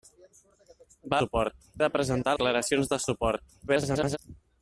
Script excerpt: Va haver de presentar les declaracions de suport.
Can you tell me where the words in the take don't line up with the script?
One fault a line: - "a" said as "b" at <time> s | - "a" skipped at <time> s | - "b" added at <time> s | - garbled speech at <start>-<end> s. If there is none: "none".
- "haver" said as "suport" at 1.2 s
- "les" skipped at 2.4 s
- garbled speech at 3.7-4.2 s